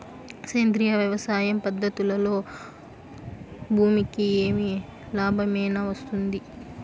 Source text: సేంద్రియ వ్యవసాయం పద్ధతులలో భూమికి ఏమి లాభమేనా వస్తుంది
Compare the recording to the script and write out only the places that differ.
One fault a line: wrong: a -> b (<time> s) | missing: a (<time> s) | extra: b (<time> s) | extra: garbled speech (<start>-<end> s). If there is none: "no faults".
no faults